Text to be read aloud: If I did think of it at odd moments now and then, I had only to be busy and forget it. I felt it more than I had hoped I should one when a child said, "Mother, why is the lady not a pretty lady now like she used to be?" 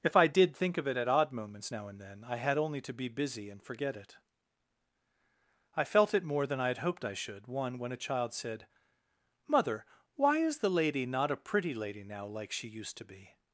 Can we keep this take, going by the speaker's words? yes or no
yes